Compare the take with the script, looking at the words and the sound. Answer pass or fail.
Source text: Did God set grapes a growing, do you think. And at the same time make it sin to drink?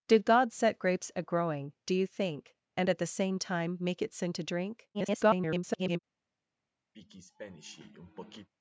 fail